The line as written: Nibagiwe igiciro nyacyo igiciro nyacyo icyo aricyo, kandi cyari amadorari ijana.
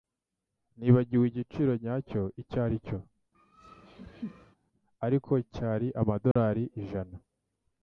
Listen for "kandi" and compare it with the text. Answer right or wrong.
wrong